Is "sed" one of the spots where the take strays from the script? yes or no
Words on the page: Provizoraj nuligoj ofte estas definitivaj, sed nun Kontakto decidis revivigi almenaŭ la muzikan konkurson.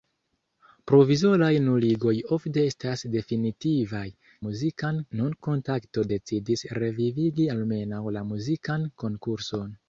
yes